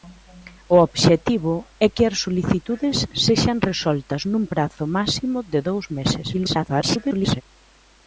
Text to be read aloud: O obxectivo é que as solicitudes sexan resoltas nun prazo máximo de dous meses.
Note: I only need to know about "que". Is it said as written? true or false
true